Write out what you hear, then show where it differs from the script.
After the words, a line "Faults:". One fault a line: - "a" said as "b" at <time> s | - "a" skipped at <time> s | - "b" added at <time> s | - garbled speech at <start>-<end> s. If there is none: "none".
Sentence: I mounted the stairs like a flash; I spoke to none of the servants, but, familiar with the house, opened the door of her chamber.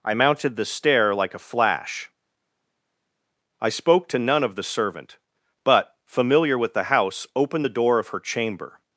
I mounted the stair like a flash; I spoke to none of the servant, but, familiar with the house, opened the door of her chamber.
Faults:
- "stairs" said as "stair" at 0.6 s
- "servants" said as "servant" at 4.6 s